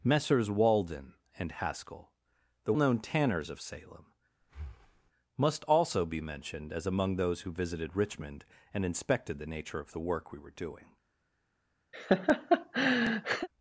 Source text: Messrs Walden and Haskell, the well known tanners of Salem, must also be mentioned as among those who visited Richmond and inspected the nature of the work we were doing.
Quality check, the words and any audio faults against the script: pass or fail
fail